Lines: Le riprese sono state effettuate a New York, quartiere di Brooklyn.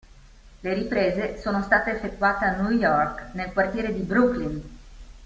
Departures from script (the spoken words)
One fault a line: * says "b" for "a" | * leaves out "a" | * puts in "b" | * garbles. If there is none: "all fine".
* puts in "nel"